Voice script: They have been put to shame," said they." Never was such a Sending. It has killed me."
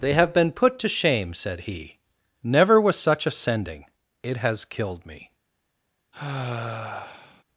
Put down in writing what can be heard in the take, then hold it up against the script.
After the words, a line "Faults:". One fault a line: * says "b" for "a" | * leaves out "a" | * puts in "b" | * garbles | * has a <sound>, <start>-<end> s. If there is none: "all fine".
They have been put to shame," said he." Never was such a Sending. It has killed me."
Faults:
* says "he" for "they"
* has a sigh, 6.1-7.4 s